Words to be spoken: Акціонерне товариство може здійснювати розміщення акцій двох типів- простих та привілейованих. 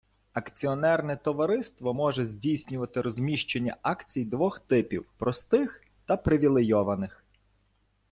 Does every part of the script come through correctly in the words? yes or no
yes